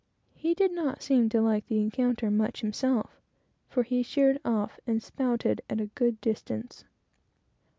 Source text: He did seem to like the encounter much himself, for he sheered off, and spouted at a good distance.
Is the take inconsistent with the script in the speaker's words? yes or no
yes